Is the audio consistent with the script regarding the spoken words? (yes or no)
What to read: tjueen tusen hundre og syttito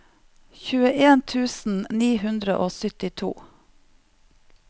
no